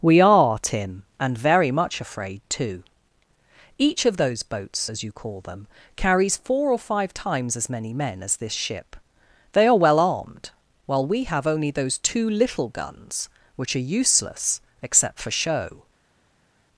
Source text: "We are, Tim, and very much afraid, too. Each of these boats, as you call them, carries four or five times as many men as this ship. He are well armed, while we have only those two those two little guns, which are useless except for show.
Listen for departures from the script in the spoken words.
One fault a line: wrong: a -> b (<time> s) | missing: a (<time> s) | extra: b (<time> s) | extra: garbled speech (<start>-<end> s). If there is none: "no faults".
wrong: these -> those (4.2 s)
wrong: He -> They (9.5 s)
missing: those two (12.3 s)